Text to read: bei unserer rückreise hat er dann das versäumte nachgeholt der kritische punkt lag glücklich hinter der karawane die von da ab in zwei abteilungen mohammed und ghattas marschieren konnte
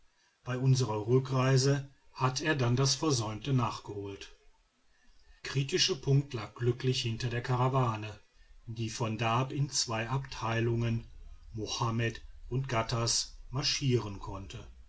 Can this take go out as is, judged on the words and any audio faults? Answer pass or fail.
fail